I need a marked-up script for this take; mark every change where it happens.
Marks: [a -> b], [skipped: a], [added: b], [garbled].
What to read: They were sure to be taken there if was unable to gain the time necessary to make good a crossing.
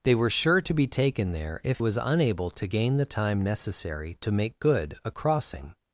They were sure to be taken there if was unable to gain the time necessary to make good a crossing.